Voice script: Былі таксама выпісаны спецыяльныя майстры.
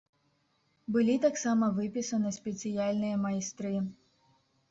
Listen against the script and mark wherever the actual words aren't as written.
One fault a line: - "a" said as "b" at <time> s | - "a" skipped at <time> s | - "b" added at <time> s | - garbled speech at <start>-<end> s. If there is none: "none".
none